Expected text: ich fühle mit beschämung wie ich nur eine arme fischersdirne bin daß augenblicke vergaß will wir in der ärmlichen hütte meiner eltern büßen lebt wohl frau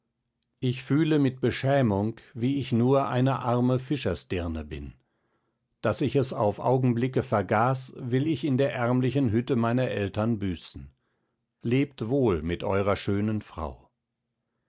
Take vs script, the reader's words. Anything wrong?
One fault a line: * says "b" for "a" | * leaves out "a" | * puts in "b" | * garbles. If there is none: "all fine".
* puts in "ich es auf"
* says "ich" for "wir"
* puts in "mit eurer schönen"